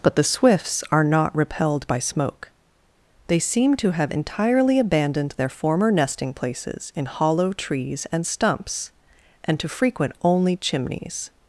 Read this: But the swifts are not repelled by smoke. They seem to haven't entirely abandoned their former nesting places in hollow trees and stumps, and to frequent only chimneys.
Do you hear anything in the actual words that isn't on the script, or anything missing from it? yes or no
yes